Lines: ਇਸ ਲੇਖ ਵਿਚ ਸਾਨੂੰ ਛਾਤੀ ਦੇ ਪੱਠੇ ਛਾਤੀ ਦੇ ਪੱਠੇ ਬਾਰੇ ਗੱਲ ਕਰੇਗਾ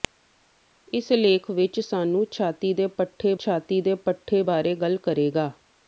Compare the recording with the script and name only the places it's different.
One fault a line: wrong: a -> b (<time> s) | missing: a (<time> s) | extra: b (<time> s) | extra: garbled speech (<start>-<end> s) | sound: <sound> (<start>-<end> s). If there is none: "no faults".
no faults